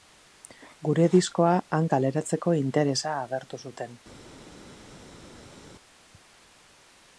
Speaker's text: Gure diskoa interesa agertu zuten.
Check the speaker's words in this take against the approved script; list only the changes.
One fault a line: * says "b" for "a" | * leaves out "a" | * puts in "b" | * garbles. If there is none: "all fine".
* puts in "han kaleratzeko"